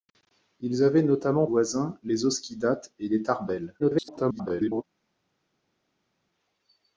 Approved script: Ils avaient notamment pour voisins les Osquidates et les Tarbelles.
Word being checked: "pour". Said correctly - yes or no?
no